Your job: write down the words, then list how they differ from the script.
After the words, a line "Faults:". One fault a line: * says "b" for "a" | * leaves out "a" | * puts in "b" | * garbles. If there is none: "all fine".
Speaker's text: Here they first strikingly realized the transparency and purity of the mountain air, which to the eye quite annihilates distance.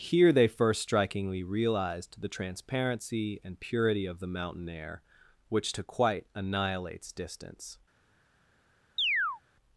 Here they first strikingly realized the transparency and purity of the mountain air, which to quite annihilates distance.
Faults:
* leaves out "the eye"